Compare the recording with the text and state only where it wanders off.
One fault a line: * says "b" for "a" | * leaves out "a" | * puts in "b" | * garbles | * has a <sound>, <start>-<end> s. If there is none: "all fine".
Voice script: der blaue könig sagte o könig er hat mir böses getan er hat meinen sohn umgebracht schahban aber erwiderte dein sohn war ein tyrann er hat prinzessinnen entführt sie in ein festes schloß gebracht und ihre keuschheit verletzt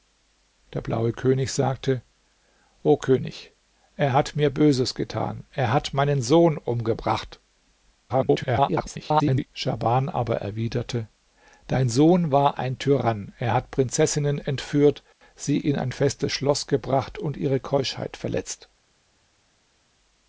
* garbles